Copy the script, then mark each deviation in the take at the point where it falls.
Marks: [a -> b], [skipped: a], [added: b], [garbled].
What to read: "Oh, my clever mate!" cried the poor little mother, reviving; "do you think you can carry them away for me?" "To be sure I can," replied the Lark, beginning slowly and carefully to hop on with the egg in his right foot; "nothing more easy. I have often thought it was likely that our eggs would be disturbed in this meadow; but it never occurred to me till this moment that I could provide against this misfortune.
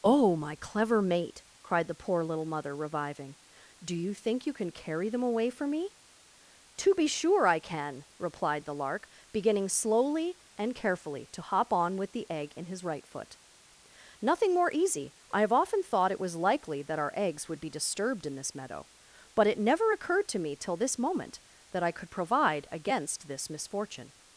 "Oh, my clever mate!" cried the poor little mother, reviving; "do you think you can carry them away for me?" "To be sure I can," replied the Lark, beginning slowly and carefully to hop on with the egg in his right foot; "nothing more easy. I have often thought it was likely that our eggs would be disturbed in this meadow; but it never occurred to me till this moment that I could provide against this misfortune.